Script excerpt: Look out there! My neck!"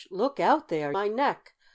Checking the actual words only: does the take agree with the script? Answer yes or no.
yes